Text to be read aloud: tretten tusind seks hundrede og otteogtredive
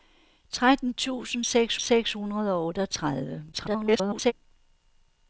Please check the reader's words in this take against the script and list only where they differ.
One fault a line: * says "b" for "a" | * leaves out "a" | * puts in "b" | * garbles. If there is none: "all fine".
* puts in "seks"
* garbles